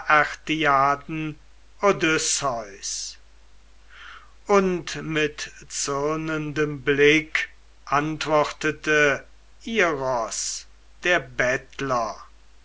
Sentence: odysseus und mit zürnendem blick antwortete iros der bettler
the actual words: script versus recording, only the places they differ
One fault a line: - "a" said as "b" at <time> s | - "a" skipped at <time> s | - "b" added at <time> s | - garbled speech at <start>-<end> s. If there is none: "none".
none